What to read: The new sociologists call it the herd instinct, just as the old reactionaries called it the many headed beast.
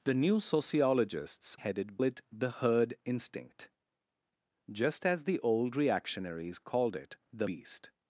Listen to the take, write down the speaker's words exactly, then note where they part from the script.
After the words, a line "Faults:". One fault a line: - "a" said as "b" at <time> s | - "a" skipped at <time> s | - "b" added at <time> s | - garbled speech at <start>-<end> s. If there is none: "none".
The new sociologists headed it the herd instinct, just as the old reactionaries called it the beast.
Faults:
- "call" said as "headed" at 1.5 s
- "many headed" skipped at 7.5 s